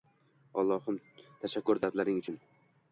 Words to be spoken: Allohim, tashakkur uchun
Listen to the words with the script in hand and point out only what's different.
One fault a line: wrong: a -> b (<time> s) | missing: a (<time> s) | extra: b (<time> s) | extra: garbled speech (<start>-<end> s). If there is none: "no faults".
extra: dardlaring (1.8 s)